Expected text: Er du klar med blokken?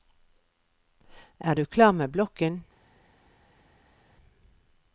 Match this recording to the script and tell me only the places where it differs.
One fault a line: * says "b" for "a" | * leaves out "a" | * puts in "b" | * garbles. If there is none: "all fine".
all fine